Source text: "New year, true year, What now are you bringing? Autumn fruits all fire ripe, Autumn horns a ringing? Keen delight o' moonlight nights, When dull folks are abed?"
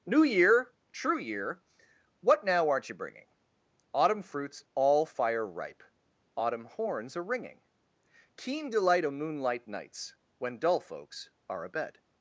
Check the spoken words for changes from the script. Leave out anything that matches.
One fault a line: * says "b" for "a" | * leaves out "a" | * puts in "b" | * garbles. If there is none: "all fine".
* says "aren't" for "are"